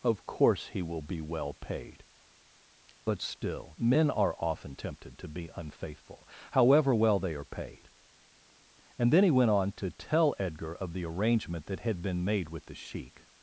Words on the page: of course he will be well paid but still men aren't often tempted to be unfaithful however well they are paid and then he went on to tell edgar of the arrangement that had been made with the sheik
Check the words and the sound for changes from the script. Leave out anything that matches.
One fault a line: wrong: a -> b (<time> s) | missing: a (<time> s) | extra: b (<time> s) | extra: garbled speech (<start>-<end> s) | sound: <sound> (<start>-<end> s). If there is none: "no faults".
wrong: aren't -> are (4.1 s)